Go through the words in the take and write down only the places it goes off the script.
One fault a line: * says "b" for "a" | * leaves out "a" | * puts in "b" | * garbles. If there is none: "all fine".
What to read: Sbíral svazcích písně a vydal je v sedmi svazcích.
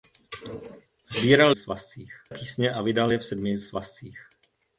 all fine